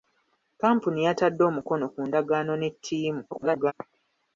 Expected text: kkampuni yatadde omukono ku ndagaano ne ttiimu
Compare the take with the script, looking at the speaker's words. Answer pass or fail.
fail